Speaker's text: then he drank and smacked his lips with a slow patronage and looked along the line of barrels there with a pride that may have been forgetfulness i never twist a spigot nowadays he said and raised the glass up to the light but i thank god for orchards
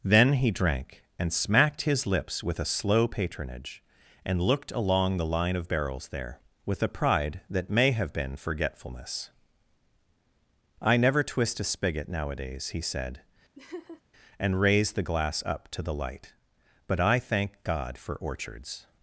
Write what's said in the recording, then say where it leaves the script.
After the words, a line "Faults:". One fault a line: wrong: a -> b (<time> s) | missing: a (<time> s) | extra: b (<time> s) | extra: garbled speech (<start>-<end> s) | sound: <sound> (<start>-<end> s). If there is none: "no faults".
then he drank and smacked his lips with a slow patronage and looked along the line of barrels there with a pride that may have been forgetfulness i never twist a spigot nowadays he said and raised the glass up to the light but i thank god for orchards
Faults:
sound: laugh (13.6-14.0 s)